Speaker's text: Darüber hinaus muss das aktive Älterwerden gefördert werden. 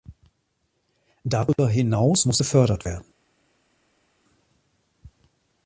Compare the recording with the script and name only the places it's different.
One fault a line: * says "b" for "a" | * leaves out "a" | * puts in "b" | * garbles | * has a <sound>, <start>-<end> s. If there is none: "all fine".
* leaves out "das aktive Älterwerden"